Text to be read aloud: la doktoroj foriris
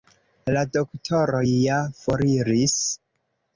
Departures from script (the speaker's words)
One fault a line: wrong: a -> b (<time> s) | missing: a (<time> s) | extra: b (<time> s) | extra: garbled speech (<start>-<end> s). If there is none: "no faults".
extra: ja (1.5 s)